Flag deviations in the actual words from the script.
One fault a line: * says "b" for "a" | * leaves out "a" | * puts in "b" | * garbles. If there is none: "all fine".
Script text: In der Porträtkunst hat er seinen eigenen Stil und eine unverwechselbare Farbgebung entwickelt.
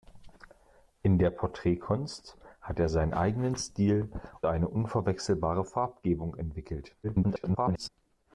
* leaves out "und"
* garbles